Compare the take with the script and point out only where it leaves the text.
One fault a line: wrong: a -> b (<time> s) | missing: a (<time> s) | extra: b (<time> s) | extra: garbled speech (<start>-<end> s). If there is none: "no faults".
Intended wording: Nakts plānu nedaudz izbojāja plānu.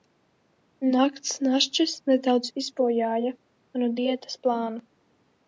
wrong: plānu -> našķis (1.5 s)
extra: manu diētas (3.4 s)